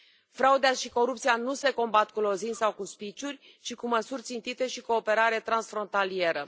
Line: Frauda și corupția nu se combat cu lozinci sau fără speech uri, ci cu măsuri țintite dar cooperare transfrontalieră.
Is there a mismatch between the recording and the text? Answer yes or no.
yes